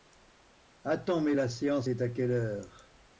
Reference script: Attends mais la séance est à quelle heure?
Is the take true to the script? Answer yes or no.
yes